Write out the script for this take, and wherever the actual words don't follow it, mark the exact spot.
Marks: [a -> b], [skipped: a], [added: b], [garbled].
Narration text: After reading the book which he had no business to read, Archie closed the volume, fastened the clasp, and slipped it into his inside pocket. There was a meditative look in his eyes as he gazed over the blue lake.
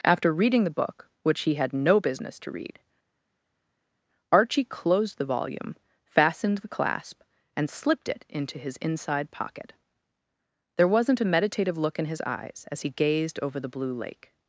After reading the book which he had no business to read, Archie closed the volume, fastened the clasp, and slipped it into his inside pocket. There [was -> wasn't] a meditative look in his eyes as he gazed over the blue lake.